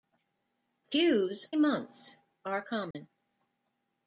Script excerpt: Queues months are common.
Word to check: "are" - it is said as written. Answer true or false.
true